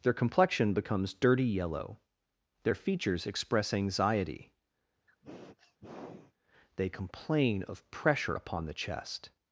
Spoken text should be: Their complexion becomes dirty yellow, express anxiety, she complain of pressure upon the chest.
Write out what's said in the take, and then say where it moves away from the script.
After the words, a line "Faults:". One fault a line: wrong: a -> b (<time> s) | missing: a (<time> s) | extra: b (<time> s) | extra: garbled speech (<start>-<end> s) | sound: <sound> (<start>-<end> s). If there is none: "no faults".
Their complexion becomes dirty yellow, their features express anxiety, they complain of pressure upon the chest.
Faults:
extra: their features (2.6 s)
sound: sniff (5.1-6.3 s)
wrong: she -> they (6.8 s)